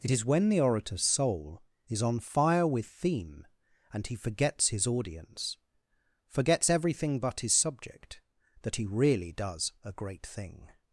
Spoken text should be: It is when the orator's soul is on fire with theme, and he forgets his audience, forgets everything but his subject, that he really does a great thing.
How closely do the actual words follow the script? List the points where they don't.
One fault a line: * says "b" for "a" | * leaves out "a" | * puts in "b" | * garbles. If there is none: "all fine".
all fine